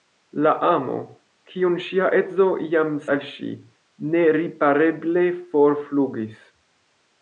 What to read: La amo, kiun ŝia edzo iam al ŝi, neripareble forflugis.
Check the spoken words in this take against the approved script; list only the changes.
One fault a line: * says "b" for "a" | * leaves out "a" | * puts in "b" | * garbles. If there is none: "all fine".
all fine